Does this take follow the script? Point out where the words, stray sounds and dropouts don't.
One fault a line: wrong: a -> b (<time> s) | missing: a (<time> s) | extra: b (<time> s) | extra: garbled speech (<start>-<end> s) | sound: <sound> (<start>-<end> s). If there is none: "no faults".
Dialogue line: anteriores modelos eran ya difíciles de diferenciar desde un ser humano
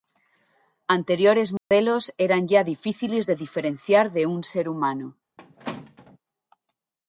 sound: dropout (1.6-1.7 s)
wrong: desde -> de (4.1 s)
sound: squeak (5.4-6.2 s)